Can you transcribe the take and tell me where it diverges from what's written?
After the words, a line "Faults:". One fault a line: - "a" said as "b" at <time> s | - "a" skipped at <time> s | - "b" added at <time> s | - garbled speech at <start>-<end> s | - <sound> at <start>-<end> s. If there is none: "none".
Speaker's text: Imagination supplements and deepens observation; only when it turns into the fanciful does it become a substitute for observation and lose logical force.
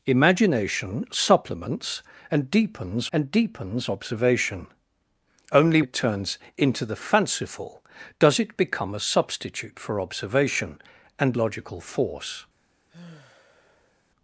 Imagination supplements and deepens and deepens observation; only it turns into the fanciful does it become a substitute for observation and logical force.
Faults:
- "and deepens" added at 3.1 s
- "when" skipped at 5.8 s
- "lose" skipped at 11.4 s
- sigh at 12.9-14.0 s